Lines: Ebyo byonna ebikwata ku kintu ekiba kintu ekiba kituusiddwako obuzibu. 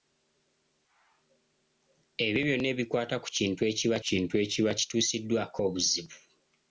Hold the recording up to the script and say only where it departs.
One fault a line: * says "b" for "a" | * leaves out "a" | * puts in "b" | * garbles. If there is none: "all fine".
all fine